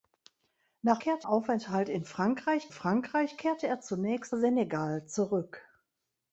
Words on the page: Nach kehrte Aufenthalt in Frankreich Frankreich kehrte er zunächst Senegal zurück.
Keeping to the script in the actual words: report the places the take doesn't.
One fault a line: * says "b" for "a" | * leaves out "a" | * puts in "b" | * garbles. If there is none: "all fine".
all fine